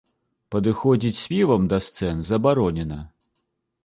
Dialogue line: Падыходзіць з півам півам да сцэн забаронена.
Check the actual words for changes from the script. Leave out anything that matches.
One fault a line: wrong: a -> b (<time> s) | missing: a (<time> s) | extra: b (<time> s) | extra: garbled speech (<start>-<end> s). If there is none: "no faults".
missing: півам (1.7 s)